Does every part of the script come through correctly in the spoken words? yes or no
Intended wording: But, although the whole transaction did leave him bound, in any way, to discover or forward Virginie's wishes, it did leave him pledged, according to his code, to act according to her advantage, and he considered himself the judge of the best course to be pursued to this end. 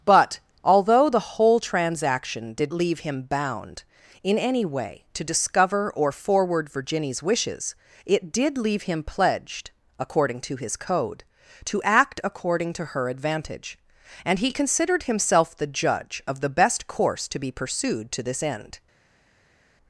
yes